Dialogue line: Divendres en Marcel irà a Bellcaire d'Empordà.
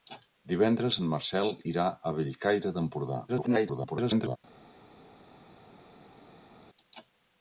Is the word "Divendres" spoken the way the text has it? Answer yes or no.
yes